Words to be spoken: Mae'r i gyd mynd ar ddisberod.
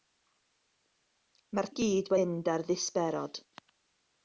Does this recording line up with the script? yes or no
yes